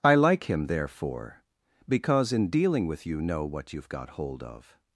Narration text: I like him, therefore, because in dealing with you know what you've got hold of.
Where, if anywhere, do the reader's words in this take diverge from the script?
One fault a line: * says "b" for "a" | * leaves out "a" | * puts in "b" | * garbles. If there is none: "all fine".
all fine